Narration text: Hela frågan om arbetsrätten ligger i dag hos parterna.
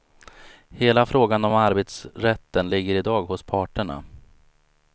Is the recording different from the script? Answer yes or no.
no